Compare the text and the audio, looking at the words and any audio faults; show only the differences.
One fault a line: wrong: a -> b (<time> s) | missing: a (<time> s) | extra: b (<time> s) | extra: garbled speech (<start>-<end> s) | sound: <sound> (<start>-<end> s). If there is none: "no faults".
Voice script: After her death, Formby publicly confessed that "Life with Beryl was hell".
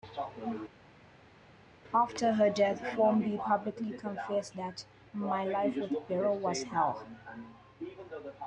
extra: My (5.1 s)